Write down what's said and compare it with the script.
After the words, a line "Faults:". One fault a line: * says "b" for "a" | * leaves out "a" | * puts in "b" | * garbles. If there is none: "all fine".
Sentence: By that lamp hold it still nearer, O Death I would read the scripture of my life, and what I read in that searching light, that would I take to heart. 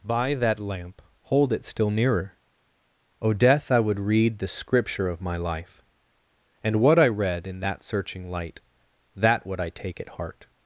By that lamp hold it still nearer, O Death I would read the scripture of my life, and what I read in that searching light, that would I take at heart.
Faults:
* says "at" for "to"